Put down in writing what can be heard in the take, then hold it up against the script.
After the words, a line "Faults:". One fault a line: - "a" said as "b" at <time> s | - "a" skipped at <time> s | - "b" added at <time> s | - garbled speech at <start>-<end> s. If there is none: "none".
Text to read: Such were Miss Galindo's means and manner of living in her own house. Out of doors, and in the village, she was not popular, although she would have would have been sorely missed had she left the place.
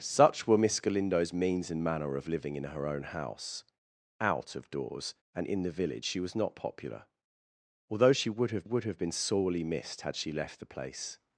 Such were Miss Galindo's means and manner of living in her own house. Out of doors, and in the village, she was not popular, although she would have would have been sorely missed had she left the place.
Faults:
none